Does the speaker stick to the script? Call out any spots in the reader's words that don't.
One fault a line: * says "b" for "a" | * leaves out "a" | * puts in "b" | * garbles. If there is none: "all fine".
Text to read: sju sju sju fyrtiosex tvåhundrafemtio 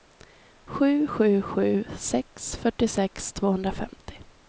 * puts in "sex"